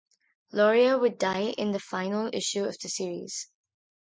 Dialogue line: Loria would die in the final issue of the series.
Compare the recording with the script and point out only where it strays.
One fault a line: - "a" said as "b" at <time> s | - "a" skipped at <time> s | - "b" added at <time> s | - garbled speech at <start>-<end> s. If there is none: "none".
none